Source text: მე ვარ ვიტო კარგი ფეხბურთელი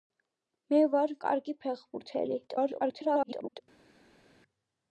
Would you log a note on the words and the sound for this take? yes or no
yes